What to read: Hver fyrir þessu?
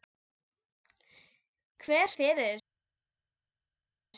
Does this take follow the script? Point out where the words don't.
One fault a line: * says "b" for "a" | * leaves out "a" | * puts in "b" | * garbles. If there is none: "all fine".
all fine